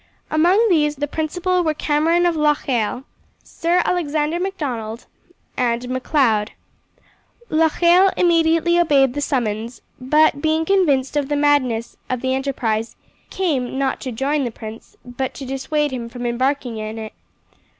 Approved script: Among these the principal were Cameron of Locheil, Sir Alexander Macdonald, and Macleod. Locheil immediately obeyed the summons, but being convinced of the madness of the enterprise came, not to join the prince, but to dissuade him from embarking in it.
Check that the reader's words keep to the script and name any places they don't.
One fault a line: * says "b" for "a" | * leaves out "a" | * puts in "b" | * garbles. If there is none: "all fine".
all fine